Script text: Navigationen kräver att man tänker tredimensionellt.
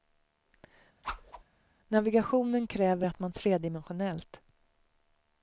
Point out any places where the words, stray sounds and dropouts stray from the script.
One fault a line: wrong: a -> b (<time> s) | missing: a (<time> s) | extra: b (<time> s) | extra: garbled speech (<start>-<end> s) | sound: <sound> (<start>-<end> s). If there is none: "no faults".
sound: whoosh (1.0-1.4 s)
missing: tänker (3.3 s)